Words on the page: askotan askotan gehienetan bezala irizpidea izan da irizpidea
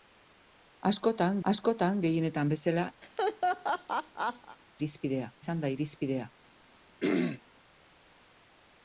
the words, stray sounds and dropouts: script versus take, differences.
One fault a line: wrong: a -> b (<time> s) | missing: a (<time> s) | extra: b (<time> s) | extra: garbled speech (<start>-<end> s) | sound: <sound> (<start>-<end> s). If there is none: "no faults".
sound: laugh (3.0-4.6 s)
sound: throat clearing (7.0-7.4 s)